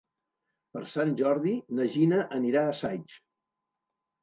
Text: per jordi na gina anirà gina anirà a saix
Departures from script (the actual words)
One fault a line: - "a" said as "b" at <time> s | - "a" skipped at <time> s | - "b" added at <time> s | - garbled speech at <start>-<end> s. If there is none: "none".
- "sant" added at 0.9 s
- "gina anirà" skipped at 2.6 s